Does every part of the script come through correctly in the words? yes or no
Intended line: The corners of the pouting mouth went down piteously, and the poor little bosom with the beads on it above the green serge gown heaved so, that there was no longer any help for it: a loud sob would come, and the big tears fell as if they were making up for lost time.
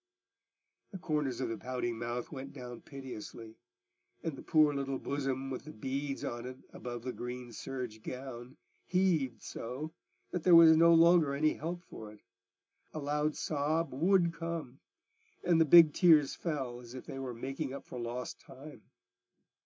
yes